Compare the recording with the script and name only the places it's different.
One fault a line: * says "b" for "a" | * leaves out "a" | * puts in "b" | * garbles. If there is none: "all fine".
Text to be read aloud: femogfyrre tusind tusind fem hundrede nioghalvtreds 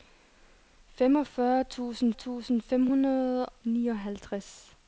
all fine